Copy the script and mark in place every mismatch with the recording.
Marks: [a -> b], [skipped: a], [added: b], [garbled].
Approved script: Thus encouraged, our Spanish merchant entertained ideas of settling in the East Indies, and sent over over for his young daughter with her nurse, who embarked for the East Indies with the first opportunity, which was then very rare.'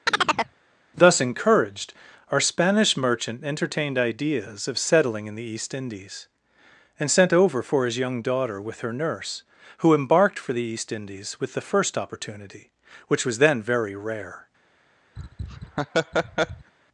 Thus encouraged, our Spanish merchant entertained ideas of settling in the East Indies, and sent over [skipped: over] for his young daughter with her nurse, who embarked for the East Indies with the first opportunity, which was then very rare.'